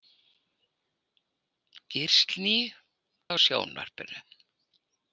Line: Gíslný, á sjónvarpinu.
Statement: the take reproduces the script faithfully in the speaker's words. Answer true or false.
true